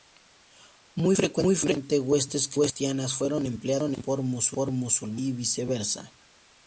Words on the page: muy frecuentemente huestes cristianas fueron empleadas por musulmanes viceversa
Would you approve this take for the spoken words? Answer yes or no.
no